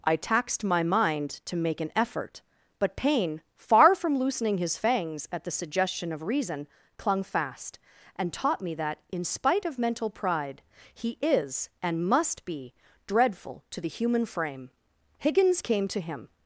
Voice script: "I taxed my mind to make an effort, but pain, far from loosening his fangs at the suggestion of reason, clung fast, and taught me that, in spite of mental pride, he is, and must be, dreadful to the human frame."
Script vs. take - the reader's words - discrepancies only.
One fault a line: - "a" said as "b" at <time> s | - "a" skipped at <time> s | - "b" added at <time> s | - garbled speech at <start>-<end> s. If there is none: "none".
- "Higgins came to him" added at 15.2 s